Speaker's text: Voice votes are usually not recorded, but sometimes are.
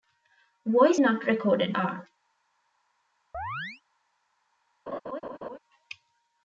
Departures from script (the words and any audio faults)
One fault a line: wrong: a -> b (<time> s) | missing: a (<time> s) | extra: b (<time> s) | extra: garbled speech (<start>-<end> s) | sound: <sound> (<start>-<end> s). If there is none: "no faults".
missing: votes are usually (1.0 s)
missing: but sometimes (1.8 s)
sound: chirp (3.3-3.8 s)
sound: laugh (4.9-5.6 s)